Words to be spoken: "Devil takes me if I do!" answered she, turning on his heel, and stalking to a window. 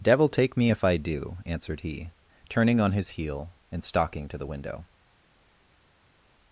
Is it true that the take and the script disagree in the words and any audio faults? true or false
true